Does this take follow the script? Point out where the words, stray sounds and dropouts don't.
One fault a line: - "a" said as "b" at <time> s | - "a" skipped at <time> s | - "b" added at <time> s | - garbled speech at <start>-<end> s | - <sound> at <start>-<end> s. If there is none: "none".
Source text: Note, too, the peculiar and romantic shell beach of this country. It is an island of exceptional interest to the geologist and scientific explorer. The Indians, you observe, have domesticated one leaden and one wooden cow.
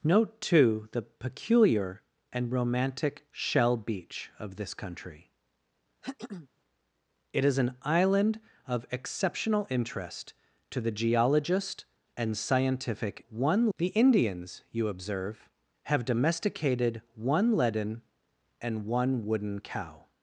- throat clearing at 6.0-6.5 s
- "explorer" said as "one" at 13.3 s